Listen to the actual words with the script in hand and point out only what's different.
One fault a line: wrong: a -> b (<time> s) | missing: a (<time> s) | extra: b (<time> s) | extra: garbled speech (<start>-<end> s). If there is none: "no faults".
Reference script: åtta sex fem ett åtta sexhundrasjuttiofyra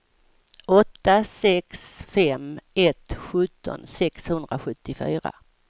wrong: åtta -> sjutton (3.1 s)